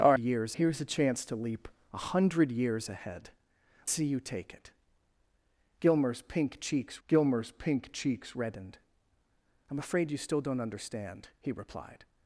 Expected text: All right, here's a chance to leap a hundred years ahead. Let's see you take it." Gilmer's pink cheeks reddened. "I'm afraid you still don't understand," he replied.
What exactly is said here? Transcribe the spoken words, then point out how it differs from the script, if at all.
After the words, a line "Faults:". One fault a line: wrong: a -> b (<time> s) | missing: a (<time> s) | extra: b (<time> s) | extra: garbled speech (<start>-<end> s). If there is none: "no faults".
All years, here's a chance to leap a hundred years ahead. See you take it." Gilmer's pink cheeks gilmer's pink cheeks reddened. "I'm afraid you still don't understand," he replied.
Faults:
wrong: right -> years (0.2 s)
missing: Let's (3.3 s)
extra: gilmer's pink cheeks (7.1 s)